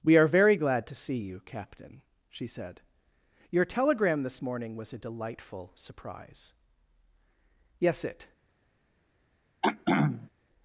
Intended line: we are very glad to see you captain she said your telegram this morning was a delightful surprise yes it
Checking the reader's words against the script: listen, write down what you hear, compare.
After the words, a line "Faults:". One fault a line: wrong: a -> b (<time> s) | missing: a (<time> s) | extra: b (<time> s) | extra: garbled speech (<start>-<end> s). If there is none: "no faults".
we are very glad to see you captain she said your telegram this morning was a delightful surprise yes it
Faults:
no faults